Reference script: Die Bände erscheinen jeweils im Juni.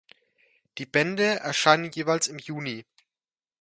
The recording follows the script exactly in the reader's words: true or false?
true